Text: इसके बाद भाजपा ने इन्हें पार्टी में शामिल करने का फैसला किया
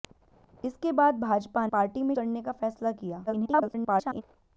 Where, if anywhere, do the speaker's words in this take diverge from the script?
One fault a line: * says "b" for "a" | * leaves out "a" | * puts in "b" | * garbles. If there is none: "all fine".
* leaves out "ने इन्हें"
* leaves out "शामिल"
* garbles